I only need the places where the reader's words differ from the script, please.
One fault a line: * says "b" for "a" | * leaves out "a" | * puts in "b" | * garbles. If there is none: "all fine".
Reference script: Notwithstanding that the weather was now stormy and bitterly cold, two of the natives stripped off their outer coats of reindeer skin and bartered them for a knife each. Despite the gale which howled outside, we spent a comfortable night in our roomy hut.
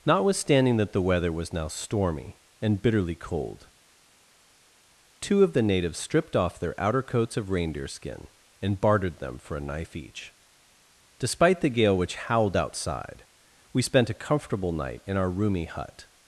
all fine